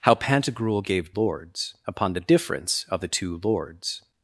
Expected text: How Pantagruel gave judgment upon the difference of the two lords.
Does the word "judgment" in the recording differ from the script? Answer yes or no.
yes